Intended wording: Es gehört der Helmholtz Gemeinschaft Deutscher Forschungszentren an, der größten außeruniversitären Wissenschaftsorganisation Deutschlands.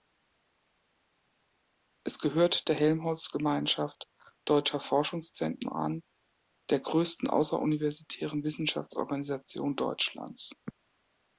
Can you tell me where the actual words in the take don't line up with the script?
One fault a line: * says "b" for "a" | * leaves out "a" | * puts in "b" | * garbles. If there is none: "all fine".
all fine